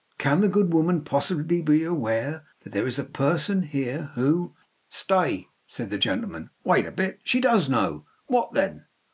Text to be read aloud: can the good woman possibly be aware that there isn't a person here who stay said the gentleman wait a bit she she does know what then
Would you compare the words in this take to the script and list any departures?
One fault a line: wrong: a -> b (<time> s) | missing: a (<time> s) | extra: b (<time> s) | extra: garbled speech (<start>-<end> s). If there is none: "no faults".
wrong: isn't -> is (2.9 s)
missing: she (7.4 s)